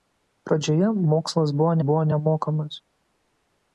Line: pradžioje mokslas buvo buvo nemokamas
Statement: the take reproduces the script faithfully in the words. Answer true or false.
true